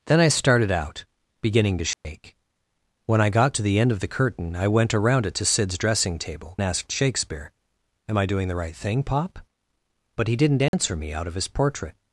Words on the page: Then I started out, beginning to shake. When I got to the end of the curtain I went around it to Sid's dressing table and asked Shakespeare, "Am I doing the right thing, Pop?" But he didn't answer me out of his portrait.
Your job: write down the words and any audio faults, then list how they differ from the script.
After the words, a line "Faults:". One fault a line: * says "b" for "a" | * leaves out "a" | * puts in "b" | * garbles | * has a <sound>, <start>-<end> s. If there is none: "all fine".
Then I started out, beginning to shake. When I got to the end of the curtain I went around it to Sid's dressing table asked Shakespeare, "Am I doing the right thing, Pop?" But he didn't answer me out of his portrait.
Faults:
* has a dropout, 1.9-2.0 s
* leaves out "and"
* has a dropout, 10.7-10.7 s